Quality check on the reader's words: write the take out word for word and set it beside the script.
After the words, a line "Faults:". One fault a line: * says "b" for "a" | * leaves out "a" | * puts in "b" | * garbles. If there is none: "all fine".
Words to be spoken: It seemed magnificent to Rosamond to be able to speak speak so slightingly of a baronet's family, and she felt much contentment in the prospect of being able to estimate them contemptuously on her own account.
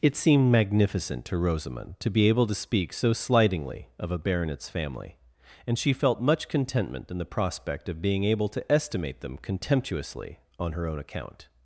It seemed magnificent to Rosamond to be able to speak so slightingly of a baronet's family, and she felt much contentment in the prospect of being able to estimate them contemptuously on her own account.
Faults:
* leaves out "speak"